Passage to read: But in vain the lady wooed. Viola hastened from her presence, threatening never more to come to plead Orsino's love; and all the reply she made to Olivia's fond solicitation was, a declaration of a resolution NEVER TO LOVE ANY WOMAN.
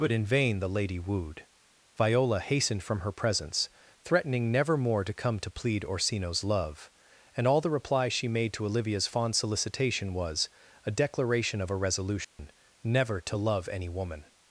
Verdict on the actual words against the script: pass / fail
pass